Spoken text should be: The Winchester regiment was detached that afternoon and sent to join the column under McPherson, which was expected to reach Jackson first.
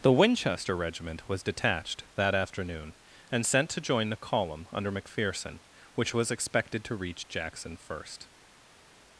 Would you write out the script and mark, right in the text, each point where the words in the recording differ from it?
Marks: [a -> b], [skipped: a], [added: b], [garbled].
The Winchester regiment was detached that afternoon and sent to join the column under McPherson, which was expected to reach Jackson first.